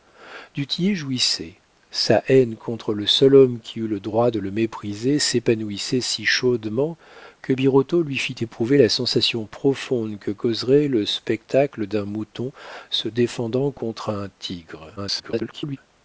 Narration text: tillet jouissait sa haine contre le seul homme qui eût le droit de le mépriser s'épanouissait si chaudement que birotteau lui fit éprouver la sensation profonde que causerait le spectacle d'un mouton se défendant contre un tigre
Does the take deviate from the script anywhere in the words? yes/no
yes